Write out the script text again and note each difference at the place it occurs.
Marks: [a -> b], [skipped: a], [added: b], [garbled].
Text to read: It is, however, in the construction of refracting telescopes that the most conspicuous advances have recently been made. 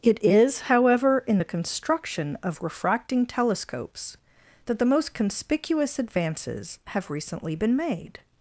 It is, however, in the construction of refracting telescopes that the most conspicuous advances have recently been made.